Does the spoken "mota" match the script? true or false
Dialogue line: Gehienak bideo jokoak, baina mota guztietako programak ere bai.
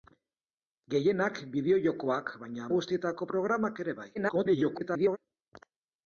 false